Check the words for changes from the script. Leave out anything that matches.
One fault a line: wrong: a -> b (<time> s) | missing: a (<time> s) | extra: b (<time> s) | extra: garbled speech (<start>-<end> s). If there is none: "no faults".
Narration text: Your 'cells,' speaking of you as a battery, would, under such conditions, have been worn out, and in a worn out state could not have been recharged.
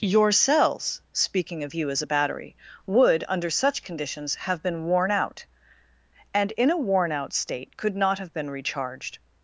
no faults